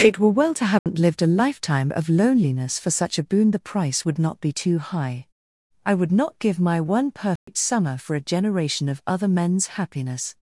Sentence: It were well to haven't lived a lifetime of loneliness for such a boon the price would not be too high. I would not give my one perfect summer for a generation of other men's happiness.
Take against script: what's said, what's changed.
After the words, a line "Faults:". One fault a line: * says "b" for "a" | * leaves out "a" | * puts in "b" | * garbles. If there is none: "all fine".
It were well to haven't lived a lifetime of loneliness for such a boon the price would not be too high. I would not give my one perfect summer for a generation of other men's happiness.
Faults:
all fine